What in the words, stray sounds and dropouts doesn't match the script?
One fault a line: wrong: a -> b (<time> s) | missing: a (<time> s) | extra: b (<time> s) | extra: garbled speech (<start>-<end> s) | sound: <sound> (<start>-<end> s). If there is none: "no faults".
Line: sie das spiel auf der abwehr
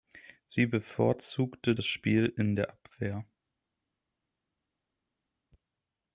extra: bevorzugte (0.7 s)
wrong: auf -> in (2.2 s)